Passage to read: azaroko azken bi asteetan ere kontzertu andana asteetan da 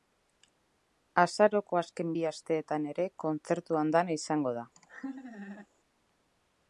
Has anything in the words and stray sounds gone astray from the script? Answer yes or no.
yes